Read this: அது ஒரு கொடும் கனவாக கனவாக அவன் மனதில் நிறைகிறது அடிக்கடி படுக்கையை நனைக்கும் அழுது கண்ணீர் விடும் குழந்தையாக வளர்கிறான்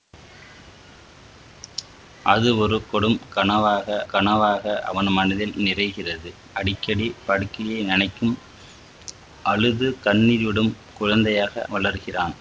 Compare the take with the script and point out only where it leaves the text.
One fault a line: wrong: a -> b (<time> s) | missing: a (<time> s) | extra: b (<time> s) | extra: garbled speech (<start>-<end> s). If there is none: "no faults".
no faults